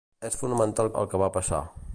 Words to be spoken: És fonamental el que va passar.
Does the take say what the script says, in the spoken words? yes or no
yes